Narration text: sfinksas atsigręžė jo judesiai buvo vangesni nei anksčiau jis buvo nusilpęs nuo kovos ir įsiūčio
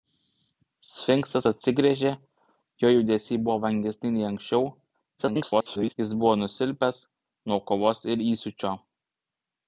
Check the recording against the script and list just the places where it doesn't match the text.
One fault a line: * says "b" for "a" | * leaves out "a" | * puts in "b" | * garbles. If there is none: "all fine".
* garbles